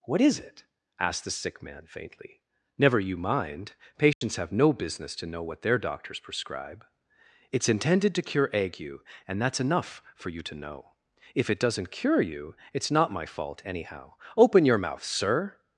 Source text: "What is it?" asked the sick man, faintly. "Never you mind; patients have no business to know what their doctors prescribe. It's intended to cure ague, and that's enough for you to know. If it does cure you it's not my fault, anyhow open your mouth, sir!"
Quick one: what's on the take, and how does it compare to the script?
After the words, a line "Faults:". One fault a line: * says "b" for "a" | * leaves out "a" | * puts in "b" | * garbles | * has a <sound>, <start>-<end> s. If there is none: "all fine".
"What is it?" asked the sick man, faintly. "Never you mind; patients have no business to know what their doctors prescribe. It's intended to cure ague, and that's enough for you to know. If it doesn't cure you it's not my fault, anyhow open your mouth, sir!"
Faults:
* has a dropout, 4.1-4.2 s
* says "doesn't" for "does"